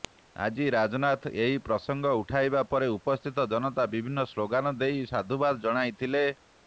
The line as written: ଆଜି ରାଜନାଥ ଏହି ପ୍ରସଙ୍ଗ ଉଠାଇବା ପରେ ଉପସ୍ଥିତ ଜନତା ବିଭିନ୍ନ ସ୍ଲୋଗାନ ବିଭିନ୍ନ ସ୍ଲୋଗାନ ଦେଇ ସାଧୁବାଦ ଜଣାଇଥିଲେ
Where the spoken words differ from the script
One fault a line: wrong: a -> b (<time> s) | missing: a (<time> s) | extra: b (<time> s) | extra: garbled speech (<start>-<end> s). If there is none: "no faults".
missing: ବିଭିନ୍ନ ସ୍ଲୋଗାନ (4.7 s)